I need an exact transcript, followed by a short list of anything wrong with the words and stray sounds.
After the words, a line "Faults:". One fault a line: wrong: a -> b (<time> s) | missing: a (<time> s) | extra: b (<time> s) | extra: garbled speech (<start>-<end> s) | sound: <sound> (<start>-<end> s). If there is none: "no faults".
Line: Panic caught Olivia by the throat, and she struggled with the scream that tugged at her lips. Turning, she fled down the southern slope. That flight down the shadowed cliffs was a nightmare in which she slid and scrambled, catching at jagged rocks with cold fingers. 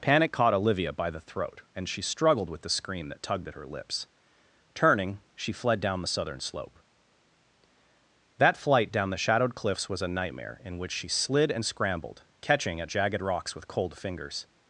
Panic caught Olivia by the throat, and she struggled with the scream that tugged at her lips. Turning, she fled down the southern slope. That flight down the shadowed cliffs was a nightmare in which she slid and scrambled, catching at jagged rocks with cold fingers.
Faults:
no faults